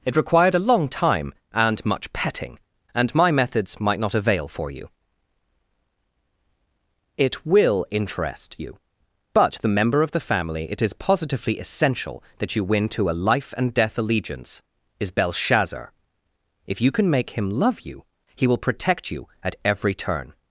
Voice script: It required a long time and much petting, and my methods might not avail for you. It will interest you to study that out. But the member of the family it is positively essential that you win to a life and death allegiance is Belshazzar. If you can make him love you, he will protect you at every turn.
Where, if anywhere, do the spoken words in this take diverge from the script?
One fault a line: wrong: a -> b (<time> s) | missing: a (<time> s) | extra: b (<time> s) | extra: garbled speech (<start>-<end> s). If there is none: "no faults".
missing: to study that out (8.8 s)